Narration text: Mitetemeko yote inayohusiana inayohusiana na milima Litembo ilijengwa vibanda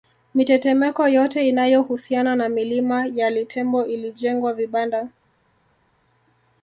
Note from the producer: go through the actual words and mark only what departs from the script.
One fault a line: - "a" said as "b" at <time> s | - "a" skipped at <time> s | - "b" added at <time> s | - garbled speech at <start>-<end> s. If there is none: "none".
- "inayohusiana" skipped at 2.4 s
- "ya" added at 3.1 s